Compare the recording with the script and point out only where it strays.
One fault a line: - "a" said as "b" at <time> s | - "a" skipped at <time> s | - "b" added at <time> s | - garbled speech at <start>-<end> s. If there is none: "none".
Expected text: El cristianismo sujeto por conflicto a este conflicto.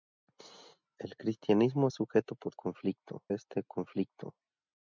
none